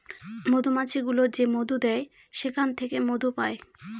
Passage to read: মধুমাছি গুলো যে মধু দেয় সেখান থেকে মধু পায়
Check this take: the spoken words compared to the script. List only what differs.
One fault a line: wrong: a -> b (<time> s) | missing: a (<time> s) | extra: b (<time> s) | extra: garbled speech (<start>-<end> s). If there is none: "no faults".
no faults